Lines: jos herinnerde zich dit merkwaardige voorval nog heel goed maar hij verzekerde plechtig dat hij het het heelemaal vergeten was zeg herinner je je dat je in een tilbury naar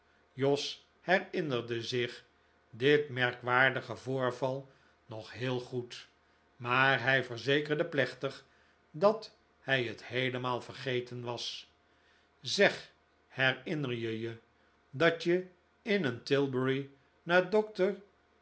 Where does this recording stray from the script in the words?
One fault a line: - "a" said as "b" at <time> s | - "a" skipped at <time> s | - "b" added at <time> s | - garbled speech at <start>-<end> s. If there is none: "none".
- "het" skipped at 10.0 s